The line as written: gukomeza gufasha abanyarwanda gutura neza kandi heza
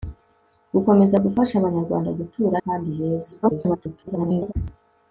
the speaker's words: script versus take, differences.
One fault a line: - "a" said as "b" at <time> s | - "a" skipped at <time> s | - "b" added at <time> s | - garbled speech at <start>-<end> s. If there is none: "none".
- "neza" skipped at 2.6 s
- garbled speech at 3.4-4.5 s